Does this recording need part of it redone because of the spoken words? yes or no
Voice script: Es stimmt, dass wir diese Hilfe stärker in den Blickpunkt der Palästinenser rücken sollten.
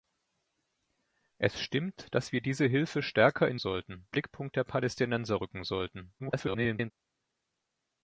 yes